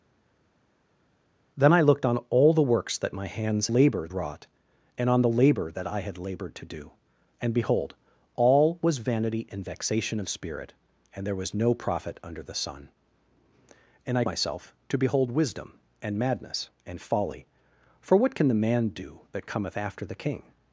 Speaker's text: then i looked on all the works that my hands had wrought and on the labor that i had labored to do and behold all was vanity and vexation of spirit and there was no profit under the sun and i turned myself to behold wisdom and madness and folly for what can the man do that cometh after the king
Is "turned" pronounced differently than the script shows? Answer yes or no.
yes